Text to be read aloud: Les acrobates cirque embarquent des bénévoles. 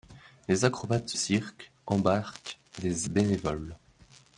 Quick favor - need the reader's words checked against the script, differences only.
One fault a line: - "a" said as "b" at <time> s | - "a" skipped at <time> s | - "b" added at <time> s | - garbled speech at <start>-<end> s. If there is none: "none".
none